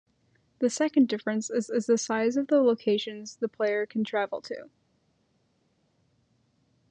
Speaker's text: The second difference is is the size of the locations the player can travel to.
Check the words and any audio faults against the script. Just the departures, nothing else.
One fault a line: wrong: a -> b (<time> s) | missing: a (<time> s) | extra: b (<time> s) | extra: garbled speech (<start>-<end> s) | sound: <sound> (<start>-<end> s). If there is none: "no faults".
no faults